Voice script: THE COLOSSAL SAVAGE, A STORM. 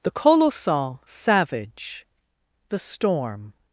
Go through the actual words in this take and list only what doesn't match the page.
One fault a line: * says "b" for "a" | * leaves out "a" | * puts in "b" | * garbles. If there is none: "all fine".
* says "THE" for "A"